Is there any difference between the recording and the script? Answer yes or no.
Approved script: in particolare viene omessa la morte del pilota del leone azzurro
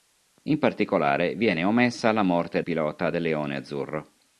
yes